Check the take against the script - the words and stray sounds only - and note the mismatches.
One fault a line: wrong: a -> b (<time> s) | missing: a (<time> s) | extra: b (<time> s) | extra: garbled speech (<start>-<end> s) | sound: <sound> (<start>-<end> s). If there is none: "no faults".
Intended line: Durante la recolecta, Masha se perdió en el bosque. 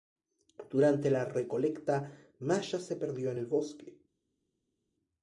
no faults